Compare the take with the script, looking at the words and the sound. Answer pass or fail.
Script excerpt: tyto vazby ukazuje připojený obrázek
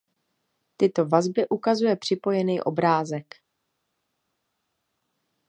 pass